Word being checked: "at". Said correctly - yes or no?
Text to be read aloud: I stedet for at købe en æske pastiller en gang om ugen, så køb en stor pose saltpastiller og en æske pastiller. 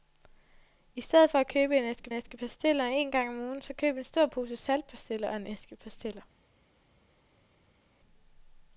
yes